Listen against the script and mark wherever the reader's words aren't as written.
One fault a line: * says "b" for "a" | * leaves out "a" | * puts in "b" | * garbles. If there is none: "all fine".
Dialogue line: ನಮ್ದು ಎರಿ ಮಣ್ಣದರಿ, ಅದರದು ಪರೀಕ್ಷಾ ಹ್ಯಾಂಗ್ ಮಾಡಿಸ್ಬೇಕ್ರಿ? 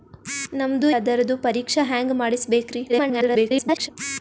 * leaves out "ಎರಿ ಮಣ್ಣದರಿ"
* garbles